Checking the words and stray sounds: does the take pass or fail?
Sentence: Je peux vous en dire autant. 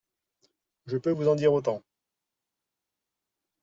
pass